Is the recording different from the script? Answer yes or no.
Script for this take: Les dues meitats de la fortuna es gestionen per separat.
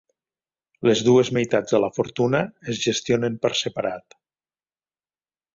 no